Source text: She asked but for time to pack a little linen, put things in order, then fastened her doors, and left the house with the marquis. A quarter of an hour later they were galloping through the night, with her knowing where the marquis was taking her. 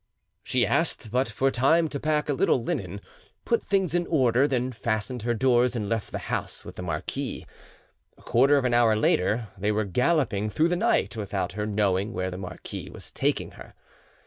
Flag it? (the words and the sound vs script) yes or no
yes